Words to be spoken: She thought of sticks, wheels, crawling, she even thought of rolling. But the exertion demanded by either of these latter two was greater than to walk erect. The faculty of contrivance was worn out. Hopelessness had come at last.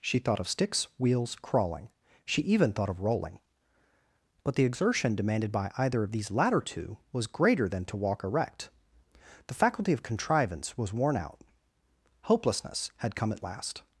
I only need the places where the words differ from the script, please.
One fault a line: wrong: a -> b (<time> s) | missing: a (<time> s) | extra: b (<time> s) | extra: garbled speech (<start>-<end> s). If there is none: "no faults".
no faults